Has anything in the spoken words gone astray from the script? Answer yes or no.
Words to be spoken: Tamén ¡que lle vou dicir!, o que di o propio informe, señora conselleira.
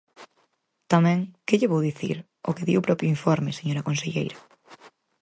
no